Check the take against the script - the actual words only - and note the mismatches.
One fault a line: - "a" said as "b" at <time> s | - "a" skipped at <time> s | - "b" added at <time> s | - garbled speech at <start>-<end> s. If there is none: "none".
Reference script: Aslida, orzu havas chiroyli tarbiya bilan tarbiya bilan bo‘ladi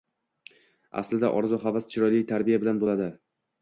- "tarbiya bilan" skipped at 2.9 s